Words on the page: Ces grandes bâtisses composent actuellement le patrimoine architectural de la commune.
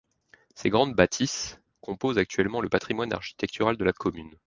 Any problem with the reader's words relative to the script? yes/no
no